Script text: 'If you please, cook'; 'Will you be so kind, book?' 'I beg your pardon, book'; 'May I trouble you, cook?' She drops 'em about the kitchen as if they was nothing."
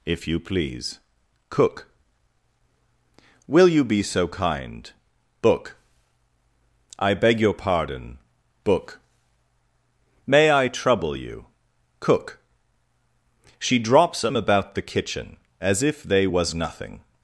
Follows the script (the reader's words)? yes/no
yes